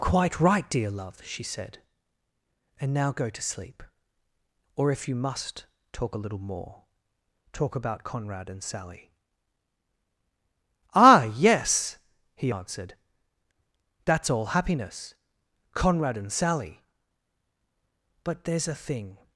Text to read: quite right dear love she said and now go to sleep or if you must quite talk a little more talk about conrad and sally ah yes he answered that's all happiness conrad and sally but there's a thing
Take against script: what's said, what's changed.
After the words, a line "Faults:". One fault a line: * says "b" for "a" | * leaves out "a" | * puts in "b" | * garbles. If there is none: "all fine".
quite right dear love she said and now go to sleep or if you must talk a little more talk about conrad and sally ah yes he answered that's all happiness conrad and sally but there's a thing
Faults:
* leaves out "quite"